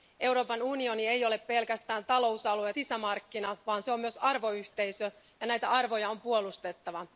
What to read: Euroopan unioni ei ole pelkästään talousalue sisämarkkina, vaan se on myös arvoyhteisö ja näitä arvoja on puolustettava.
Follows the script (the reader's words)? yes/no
yes